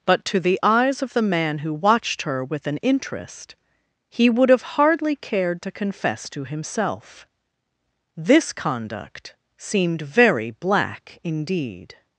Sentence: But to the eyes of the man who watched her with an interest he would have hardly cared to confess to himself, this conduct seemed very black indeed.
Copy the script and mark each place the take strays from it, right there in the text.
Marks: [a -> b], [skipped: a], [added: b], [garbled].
But to the eyes of the man who watched her with an interest he would have hardly cared to confess to himself, this conduct seemed very black indeed.